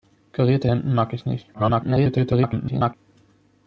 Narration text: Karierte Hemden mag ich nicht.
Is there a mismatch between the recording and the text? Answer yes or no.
yes